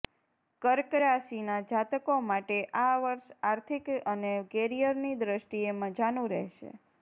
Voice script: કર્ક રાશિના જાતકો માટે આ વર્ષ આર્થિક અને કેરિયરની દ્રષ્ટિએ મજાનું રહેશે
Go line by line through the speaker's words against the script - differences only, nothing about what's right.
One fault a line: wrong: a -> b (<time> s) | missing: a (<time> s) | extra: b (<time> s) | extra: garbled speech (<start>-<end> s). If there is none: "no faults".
no faults